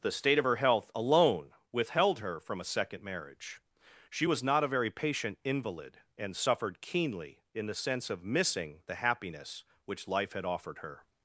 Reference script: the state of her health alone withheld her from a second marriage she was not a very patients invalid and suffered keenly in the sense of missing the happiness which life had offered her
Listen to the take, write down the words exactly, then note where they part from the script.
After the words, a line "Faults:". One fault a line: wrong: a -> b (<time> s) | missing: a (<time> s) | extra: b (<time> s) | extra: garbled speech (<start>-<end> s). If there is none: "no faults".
the state of her health alone withheld her from a second marriage she was not a very patient invalid and suffered keenly in the sense of missing the happiness which life had offered her
Faults:
wrong: patients -> patient (4.9 s)